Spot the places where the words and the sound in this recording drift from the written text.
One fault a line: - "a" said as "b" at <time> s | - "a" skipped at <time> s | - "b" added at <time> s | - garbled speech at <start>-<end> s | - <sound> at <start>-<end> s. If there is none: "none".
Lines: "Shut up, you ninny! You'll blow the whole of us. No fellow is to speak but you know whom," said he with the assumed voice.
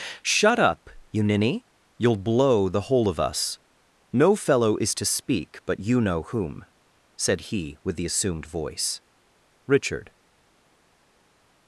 - "Richard" added at 9.7 s